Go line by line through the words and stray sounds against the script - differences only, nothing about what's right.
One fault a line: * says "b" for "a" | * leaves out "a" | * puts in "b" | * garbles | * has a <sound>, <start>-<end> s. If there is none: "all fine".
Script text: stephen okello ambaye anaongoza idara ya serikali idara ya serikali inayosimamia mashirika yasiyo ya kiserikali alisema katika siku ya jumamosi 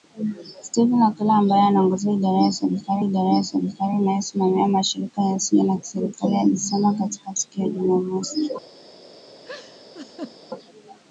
* has a laugh, 9.4-10.4 s